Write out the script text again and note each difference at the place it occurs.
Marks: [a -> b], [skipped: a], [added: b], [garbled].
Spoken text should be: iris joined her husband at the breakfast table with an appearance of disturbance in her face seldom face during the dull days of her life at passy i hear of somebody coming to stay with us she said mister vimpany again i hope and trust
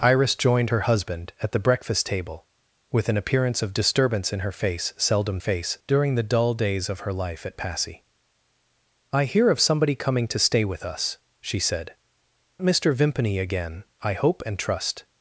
iris joined her husband at the breakfast table with an appearance of disturbance in her face seldom face during the dull days of her life at passy i hear of somebody coming to stay with us she said mister vimpany again i hope and trust